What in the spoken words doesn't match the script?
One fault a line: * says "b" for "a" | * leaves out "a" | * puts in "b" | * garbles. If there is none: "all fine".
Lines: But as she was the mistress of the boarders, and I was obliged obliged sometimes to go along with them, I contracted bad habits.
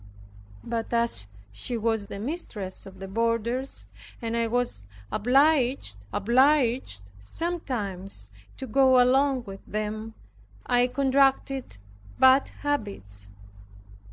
all fine